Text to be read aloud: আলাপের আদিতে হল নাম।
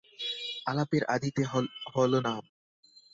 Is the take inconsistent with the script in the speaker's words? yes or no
no